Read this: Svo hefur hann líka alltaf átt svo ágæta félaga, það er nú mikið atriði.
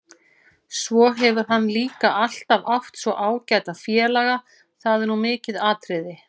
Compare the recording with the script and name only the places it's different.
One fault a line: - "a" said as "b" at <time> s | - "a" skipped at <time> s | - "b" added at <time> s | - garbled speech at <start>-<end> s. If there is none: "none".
none